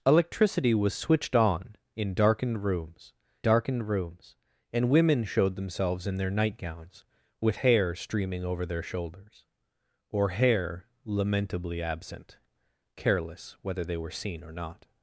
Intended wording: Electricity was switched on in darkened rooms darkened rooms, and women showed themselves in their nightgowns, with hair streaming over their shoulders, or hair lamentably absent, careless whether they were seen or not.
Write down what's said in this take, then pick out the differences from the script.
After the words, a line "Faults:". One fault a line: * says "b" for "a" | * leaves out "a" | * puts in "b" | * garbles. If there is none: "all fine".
Electricity was switched on in darkened rooms darkened rooms, and women showed themselves in their nightgowns, with hair streaming over their shoulders, or hair lamentably absent, careless whether they were seen or not.
Faults:
all fine